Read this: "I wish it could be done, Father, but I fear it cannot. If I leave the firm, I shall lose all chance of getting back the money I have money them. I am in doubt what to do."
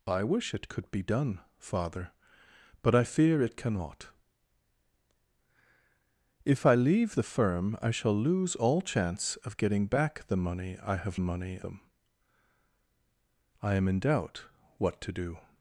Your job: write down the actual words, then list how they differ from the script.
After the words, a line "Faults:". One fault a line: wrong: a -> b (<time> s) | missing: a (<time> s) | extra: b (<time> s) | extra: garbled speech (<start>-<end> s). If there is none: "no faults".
"I wish it could be done, Father, but I fear it cannot. If I leave the firm, I shall lose all chance of getting back the money I have money them. I am in doubt what to do."
Faults:
no faults